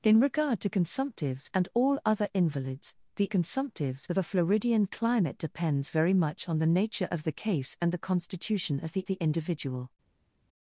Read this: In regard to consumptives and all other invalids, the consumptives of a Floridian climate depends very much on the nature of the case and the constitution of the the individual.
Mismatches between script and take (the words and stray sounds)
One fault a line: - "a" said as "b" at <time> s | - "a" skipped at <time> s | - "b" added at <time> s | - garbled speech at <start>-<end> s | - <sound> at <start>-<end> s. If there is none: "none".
none